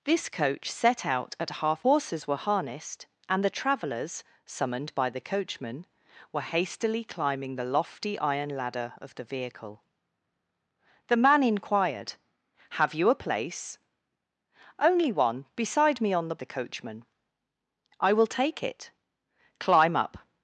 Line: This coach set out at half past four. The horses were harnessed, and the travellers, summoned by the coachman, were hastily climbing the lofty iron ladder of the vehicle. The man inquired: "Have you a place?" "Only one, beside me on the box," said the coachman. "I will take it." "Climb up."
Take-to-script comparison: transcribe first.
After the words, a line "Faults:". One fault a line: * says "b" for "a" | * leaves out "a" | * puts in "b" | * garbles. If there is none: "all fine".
This coach set out at half horses were harnessed, and the travellers, summoned by the coachman, were hastily climbing the lofty iron ladder of the vehicle. The man inquired: "Have you a place?" "Only one, beside me on the the coachman. "I will take it." "Climb up."
Faults:
* leaves out "past four The"
* leaves out "box said"